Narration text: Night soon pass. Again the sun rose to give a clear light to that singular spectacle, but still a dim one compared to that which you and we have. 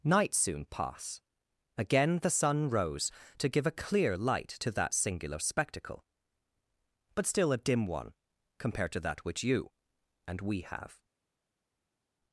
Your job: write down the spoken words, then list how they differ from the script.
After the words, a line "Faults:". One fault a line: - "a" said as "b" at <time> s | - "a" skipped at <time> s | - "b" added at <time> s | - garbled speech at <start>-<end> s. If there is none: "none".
Night soon pass. Again the sun rose to give a clear light to that singular spectacle, but still a dim one compared to that which you and we have.
Faults:
none